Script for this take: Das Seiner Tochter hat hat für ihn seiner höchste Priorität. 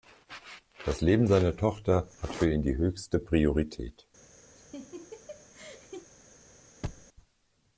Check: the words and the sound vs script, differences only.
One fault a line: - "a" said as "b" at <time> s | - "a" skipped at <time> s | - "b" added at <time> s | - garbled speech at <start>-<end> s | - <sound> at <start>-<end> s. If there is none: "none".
- "Leben" added at 1.0 s
- "hat" skipped at 2.3 s
- "seiner" said as "die" at 2.6 s
- laugh at 4.5-6.1 s
- thud at 6.8-7.1 s